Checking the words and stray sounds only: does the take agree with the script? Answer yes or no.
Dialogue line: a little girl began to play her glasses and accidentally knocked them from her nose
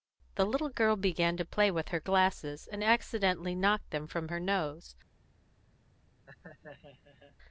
no